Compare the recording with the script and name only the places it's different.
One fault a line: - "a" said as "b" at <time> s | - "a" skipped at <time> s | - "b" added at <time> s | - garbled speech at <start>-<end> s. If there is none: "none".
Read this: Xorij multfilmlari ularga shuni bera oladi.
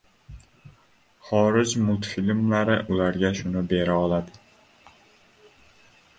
none